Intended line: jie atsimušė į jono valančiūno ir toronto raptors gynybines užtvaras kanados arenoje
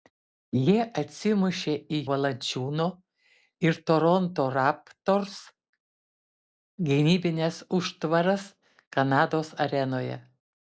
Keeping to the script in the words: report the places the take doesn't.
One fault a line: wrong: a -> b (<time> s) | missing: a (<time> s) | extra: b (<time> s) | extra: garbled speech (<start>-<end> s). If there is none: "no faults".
missing: jono (2.0 s)